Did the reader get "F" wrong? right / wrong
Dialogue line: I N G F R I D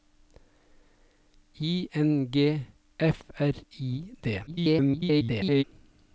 right